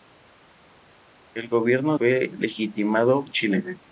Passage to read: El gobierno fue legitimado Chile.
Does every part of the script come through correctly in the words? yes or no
yes